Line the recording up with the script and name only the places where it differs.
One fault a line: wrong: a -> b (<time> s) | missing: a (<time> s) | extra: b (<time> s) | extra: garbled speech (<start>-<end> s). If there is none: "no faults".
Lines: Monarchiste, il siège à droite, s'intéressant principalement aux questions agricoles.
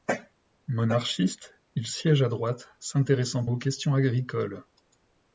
missing: principalement (3.5 s)